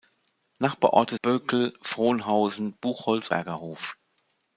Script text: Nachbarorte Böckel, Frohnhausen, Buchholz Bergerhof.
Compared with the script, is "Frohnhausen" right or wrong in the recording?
right